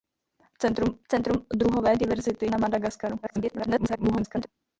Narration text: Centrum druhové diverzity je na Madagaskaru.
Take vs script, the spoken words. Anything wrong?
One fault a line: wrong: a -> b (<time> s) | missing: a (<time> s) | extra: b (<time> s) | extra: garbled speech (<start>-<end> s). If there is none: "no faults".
extra: centrum (1.1 s)
missing: je (2.5 s)
extra: garbled speech (3.2-4.5 s)